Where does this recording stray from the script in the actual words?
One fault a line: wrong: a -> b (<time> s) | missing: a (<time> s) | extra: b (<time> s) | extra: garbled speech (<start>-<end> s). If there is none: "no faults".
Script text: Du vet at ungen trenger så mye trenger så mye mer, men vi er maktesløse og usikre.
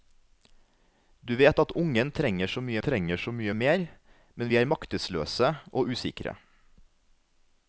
no faults